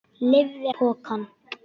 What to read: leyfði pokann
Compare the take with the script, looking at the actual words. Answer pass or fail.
pass